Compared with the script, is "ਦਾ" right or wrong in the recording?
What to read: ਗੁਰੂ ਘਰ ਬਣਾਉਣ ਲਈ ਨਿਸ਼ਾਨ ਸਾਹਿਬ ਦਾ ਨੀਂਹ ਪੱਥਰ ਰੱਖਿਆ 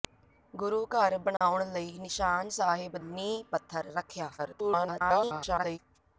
wrong